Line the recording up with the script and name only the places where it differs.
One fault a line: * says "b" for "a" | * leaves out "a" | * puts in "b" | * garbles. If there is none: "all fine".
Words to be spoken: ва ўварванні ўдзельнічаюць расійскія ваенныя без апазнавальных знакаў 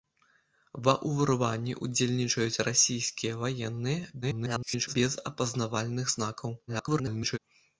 * garbles
* garbles